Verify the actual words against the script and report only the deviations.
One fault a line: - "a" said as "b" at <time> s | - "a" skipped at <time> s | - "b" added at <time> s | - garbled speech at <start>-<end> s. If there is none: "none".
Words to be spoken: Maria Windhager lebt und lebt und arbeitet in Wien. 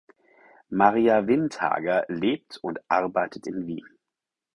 - "lebt und" skipped at 2.8 s